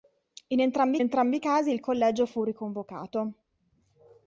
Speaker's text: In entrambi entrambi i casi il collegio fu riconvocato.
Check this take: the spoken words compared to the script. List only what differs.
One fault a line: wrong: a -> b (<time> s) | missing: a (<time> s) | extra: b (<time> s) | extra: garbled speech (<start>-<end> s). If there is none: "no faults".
no faults